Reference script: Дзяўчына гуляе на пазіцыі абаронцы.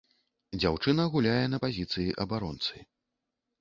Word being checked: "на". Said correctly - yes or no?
yes